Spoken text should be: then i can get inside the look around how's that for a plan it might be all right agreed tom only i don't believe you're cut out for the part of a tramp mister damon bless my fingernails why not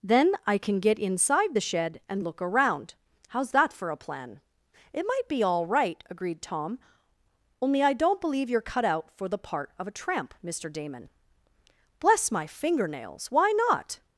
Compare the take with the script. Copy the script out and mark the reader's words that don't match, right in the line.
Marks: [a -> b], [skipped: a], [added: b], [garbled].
then i can get inside the [added: shed and] look around how's that for a plan it might be all right agreed tom only i don't believe you're cut out for the part of a tramp mister damon bless my fingernails why not